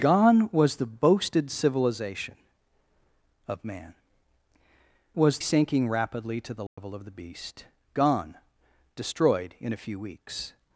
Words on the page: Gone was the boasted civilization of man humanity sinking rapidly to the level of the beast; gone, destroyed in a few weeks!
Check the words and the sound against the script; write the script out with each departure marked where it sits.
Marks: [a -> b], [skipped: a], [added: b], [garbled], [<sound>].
Gone was the boasted civilization of man [humanity -> was] sinking rapidly to the level [dropout] of the beast; gone, destroyed in a few weeks!